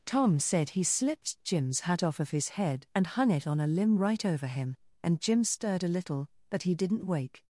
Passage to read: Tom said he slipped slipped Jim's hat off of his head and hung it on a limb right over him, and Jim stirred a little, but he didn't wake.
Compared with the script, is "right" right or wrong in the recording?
right